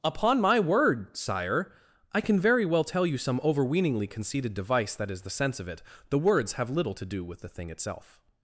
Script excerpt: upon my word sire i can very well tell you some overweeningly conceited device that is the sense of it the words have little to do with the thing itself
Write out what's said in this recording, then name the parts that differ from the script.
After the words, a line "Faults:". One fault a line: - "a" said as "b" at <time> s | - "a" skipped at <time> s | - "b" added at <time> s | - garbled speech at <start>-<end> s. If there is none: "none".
upon my word sire i can very well tell you some overweeningly conceited device that is the sense of it the words have little to do with the thing itself
Faults:
none